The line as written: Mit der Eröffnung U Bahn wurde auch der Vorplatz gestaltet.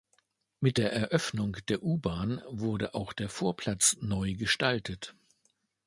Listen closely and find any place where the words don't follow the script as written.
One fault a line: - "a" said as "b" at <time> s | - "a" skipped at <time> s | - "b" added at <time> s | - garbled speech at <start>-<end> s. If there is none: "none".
- "der" added at 1.7 s
- "neu" added at 4.0 s